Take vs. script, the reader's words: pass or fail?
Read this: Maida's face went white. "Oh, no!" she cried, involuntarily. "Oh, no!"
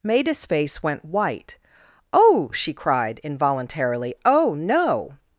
fail